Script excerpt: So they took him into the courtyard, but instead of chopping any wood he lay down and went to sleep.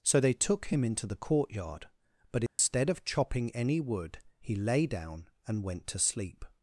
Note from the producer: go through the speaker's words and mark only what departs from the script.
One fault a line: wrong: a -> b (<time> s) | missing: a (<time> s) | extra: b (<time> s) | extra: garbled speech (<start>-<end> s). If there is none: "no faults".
no faults